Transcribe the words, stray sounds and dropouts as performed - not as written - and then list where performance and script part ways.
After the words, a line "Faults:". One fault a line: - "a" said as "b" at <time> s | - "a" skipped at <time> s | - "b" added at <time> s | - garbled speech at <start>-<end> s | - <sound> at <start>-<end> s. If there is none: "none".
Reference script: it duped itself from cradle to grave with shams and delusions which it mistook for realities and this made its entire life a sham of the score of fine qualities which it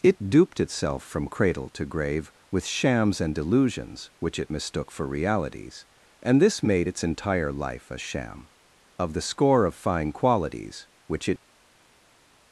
it duped itself from cradle to grave with shams and delusions which it mistook for realities and this made its entire life a sham of the score of fine qualities which it
Faults:
none